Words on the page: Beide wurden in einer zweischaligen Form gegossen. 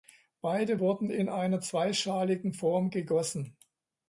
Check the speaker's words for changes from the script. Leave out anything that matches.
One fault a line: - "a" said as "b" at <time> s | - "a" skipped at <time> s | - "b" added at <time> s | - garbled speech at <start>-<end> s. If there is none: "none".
none